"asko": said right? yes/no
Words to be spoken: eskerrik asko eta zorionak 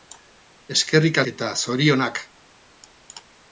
no